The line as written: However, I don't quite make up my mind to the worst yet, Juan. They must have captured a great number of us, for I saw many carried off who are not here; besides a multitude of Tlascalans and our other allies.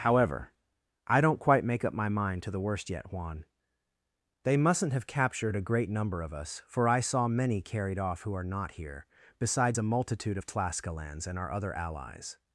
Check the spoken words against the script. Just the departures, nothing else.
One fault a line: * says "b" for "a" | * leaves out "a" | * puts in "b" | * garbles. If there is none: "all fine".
* says "mustn't" for "must"